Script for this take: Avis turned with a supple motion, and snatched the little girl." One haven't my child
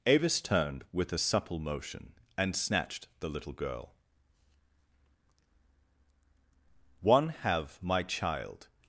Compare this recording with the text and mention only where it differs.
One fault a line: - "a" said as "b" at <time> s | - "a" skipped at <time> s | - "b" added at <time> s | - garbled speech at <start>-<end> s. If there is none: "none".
- "haven't" said as "have" at 7.3 s